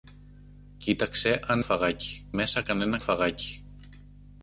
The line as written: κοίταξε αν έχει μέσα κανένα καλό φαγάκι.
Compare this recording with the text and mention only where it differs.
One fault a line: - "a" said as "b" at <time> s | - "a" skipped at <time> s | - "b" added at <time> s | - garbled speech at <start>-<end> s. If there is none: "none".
- "έχει" said as "φαγάκι" at 1.6 s
- "καλό" skipped at 3.0 s